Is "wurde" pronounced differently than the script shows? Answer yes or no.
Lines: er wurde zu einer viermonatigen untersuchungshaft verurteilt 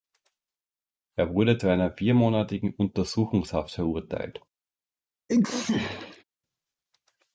no